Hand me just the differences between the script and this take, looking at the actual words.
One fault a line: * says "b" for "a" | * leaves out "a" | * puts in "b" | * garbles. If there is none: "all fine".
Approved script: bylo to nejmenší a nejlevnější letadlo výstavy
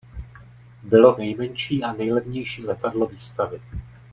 * leaves out "to"